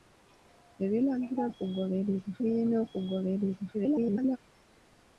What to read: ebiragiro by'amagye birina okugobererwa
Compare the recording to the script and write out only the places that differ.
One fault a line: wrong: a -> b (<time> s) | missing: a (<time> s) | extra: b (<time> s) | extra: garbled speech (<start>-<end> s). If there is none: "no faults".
wrong: by'amagye -> okugobererwa (1.5 s)
extra: garbled speech (3.7-4.4 s)